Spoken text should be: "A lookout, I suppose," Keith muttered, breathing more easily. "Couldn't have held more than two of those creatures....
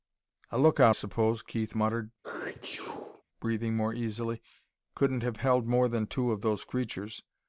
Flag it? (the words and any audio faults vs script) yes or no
yes